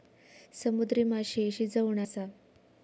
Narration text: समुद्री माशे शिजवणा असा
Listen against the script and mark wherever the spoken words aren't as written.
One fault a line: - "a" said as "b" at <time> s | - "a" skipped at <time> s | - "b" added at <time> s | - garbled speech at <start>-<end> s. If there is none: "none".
none